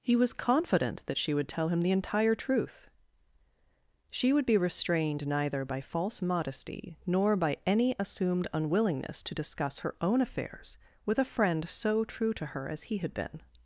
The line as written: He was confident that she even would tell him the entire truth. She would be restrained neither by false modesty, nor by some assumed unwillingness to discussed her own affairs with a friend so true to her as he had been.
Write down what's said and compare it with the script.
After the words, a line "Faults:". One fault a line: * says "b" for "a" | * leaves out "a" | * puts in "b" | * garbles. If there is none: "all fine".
He was confident that she would tell him the entire truth. She would be restrained neither by false modesty, nor by any assumed unwillingness to discuss her own affairs with a friend so true to her as he had been.
Faults:
* leaves out "even"
* says "any" for "some"
* says "discuss" for "discussed"